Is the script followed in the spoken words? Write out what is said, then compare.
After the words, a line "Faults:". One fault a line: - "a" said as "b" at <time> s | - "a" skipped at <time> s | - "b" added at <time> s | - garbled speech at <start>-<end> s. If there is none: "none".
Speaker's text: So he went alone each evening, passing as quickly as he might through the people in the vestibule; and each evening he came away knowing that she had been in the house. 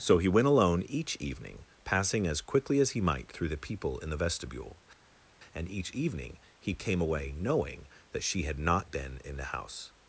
So he went alone each evening, passing as quickly as he might through the people in the vestibule; and each evening he came away knowing that she had not been in the house.
Faults:
- "not" added at 8.6 s